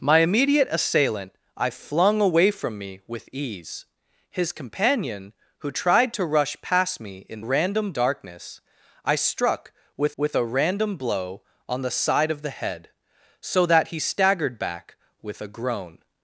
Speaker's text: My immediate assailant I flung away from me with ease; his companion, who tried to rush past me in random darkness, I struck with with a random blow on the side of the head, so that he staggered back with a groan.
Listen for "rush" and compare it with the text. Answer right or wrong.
right